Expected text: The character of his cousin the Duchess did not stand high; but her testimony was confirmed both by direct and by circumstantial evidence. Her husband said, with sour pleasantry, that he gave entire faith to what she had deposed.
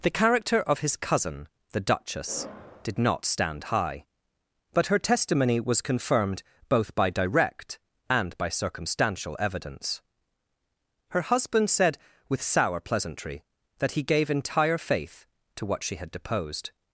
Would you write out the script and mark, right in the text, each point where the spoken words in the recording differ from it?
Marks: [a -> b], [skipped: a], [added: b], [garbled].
The character of his cousin the Duchess did not stand high; but her testimony was confirmed both by direct and by circumstantial evidence. Her husband said, with sour pleasantry, that he gave entire faith to what she had deposed.